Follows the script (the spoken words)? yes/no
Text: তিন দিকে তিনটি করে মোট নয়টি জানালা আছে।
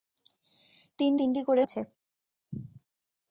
no